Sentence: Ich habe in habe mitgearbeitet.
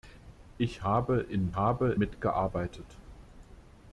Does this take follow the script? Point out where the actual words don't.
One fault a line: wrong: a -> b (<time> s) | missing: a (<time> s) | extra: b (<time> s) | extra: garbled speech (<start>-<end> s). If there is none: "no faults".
no faults